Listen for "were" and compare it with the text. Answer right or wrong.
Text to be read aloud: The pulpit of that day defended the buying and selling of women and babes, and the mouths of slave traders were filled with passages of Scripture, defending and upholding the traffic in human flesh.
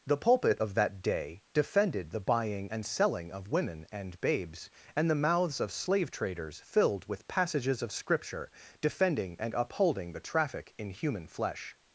wrong